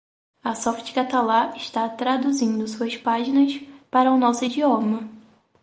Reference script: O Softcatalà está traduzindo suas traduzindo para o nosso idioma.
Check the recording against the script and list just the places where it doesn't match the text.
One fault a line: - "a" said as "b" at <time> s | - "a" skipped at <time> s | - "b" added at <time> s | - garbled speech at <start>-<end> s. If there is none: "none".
- "O" said as "A" at 0.4 s
- "traduzindo" said as "páginas" at 2.9 s